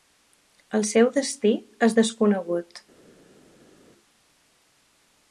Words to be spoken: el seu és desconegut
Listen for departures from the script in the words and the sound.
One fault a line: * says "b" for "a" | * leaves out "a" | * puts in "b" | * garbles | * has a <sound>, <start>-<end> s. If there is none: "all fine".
* puts in "destí"